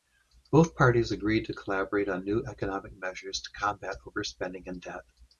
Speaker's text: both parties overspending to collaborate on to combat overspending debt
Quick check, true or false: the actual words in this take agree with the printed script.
false